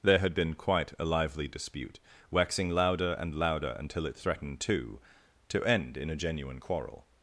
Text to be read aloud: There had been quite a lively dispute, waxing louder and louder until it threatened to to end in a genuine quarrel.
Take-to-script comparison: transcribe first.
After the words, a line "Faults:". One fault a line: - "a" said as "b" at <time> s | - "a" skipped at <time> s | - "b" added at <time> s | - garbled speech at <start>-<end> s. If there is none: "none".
There had been quite a lively dispute, waxing louder and louder until it threatened to to end in a genuine quarrel.
Faults:
none